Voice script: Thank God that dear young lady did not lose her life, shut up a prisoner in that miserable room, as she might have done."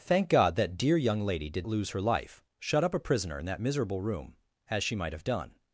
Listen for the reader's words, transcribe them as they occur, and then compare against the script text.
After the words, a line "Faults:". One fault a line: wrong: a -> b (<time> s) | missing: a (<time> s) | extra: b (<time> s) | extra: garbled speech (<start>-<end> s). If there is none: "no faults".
Thank God that dear young lady did lose her life, shut up a prisoner in that miserable room, as she might have done."
Faults:
missing: not (1.7 s)